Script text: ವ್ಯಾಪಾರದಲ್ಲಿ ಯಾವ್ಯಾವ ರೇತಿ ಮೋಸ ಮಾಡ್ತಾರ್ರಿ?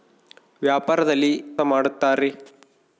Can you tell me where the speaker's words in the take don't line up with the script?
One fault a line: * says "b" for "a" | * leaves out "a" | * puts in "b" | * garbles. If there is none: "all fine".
* leaves out "ಯಾವ್ಯಾವ ರೇತಿ ಮೋಸ"